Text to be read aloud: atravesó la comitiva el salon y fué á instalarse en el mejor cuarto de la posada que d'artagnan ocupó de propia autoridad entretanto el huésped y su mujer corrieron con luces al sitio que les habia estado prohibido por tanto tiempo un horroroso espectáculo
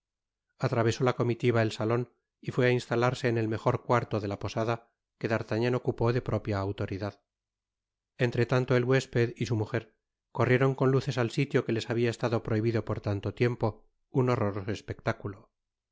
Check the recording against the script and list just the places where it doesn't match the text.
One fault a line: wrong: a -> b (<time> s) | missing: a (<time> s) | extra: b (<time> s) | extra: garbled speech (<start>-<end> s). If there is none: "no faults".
no faults